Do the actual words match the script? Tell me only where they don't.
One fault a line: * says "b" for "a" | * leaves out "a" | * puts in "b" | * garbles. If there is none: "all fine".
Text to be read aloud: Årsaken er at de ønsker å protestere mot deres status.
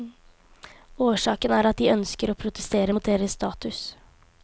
all fine